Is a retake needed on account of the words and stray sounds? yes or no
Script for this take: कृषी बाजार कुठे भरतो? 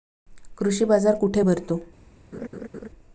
yes